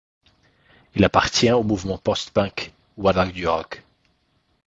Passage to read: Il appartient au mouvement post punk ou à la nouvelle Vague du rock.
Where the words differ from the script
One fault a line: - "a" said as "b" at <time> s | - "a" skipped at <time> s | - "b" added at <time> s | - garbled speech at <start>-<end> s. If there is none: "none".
- "la nouvelle" skipped at 3.1 s